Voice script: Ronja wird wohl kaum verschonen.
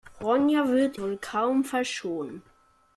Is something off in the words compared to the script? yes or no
no